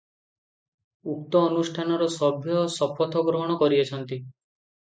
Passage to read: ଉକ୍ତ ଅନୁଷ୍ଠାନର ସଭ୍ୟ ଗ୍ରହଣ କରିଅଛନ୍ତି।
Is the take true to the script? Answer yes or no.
no